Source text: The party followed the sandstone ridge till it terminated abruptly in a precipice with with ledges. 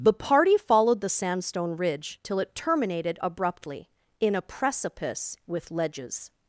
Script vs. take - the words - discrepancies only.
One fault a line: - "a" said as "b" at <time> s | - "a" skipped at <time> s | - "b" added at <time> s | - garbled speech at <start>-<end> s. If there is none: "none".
- "with" skipped at 5.7 s